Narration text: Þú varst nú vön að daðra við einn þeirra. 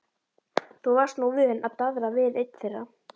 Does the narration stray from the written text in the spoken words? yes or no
no